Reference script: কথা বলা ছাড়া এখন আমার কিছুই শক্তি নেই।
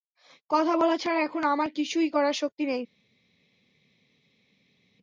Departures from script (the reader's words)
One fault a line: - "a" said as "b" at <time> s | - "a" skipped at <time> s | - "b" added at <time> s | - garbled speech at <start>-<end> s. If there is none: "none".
- "করার" added at 2.1 s